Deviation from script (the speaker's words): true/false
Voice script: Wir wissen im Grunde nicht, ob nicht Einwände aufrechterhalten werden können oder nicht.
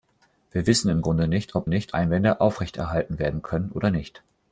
false